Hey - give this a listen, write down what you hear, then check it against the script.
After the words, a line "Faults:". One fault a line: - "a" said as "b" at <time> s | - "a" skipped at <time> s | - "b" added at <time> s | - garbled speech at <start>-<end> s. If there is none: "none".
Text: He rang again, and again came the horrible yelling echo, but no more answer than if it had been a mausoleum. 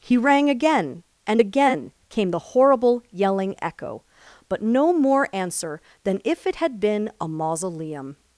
He rang again, and again came the horrible yelling echo, but no more answer than if it had been a mausoleum.
Faults:
none